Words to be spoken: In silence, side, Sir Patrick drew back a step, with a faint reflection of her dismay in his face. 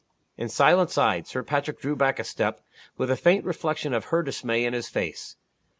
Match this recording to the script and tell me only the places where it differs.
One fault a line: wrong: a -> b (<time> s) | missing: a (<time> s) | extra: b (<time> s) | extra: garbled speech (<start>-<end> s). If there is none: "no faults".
no faults